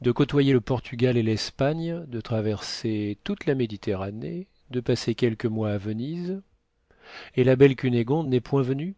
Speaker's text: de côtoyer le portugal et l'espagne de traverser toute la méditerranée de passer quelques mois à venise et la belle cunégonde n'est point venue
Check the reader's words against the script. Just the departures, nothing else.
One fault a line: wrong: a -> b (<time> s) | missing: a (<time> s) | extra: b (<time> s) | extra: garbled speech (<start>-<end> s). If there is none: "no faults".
no faults